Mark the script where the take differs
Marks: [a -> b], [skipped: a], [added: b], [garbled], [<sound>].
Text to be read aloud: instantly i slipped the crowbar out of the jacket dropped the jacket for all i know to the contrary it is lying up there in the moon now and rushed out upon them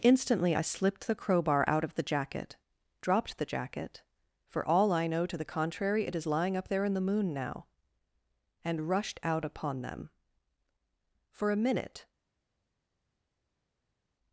instantly i slipped the crowbar out of the jacket dropped the jacket for all i know to the contrary it is lying up there in the moon now and rushed out upon them [added: for a minute]